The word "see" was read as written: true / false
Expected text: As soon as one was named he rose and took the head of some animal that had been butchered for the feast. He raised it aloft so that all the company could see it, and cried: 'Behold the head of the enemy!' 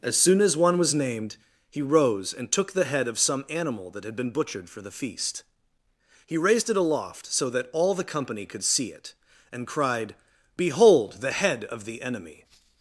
true